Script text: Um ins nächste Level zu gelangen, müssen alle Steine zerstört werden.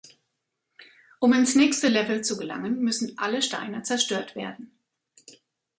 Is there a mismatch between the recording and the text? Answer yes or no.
no